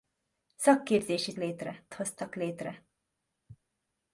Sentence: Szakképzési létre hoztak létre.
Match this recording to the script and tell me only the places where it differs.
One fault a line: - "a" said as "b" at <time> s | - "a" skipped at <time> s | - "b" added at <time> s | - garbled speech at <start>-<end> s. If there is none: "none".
none